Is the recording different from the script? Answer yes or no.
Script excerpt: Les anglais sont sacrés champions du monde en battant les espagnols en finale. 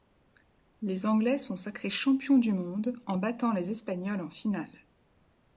no